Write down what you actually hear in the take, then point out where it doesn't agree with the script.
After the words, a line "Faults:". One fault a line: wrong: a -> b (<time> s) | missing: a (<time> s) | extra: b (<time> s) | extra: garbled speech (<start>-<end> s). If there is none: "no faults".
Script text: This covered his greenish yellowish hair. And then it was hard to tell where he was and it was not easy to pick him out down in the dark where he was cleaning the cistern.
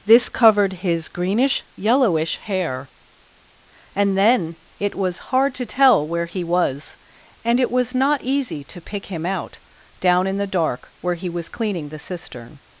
This covered his greenish yellowish hair. And then it was hard to tell where he was and it was not easy to pick him out down in the dark where he was cleaning the cistern.
Faults:
no faults